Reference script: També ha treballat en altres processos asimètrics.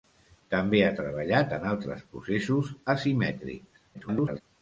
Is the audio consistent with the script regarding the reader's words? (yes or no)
no